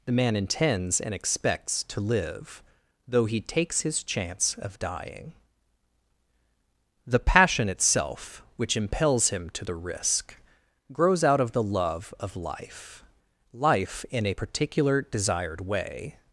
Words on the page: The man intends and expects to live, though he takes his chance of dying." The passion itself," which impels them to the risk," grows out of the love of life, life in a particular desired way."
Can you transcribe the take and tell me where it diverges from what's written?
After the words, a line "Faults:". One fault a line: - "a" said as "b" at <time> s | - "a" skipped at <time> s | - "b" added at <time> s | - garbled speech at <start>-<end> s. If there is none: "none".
The man intends and expects to live, though he takes his chance of dying." The passion itself," which impels him to the risk," grows out of the love of life, life in a particular desired way."
Faults:
- "them" said as "him" at 9.3 s